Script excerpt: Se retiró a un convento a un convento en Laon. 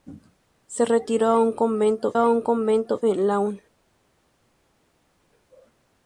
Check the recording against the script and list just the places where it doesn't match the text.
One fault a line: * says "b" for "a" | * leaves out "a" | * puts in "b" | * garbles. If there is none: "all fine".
all fine